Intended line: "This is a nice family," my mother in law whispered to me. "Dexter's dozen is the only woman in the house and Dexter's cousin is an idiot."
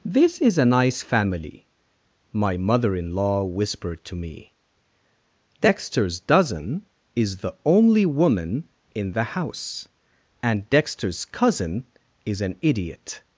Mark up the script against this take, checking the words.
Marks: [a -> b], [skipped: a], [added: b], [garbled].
"This is a nice family," my mother in law whispered to me. "Dexter's dozen is the only woman in the house and Dexter's cousin is an idiot."